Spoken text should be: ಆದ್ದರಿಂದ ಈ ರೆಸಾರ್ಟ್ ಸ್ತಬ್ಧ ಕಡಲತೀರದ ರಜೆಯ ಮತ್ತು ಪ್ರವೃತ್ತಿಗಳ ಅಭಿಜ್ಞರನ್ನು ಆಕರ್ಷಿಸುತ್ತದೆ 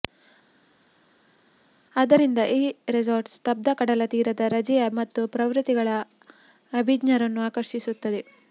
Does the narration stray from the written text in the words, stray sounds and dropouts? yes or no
no